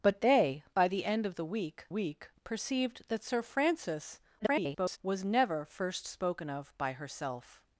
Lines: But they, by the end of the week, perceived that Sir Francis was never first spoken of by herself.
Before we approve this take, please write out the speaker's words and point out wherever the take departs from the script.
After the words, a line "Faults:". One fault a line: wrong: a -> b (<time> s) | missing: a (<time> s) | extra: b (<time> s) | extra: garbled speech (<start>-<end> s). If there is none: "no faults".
But they, by the end of the week week, perceived that Sir Francis [garbled] was never first spoken of by herself.
Faults:
extra: week (1.9 s)
extra: garbled speech (4.4-5.0 s)